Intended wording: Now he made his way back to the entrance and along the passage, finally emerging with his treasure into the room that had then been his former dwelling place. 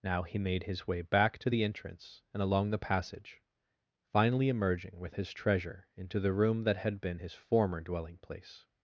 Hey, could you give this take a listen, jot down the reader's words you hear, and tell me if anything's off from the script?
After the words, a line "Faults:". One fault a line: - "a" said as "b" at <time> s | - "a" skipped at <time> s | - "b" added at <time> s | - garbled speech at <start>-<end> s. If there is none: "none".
Now he made his way back to the entrance and along the passage, finally emerging with his treasure into the room that had been his former dwelling place.
Faults:
- "then" skipped at 7.0 s